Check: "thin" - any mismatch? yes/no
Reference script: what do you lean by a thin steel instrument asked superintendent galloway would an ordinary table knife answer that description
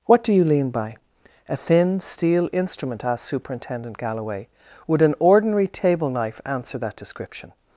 no